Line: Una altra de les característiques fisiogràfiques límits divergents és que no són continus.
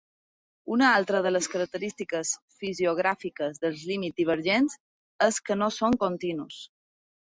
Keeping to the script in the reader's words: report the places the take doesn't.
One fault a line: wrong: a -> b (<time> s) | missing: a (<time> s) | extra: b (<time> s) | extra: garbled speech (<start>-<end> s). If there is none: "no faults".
extra: dels (3.6 s)